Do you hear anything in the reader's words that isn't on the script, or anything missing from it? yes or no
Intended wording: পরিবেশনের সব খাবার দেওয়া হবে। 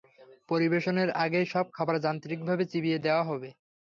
yes